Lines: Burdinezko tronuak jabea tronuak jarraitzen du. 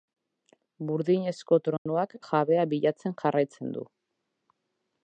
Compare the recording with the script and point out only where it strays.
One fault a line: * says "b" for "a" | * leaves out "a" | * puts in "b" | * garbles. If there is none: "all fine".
* says "bilatzen" for "tronuak"